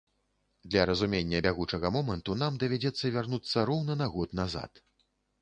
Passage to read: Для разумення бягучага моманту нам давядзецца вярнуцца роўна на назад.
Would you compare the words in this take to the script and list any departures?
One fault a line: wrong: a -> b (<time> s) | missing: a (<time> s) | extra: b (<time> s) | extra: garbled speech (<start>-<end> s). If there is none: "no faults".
extra: год (4.2 s)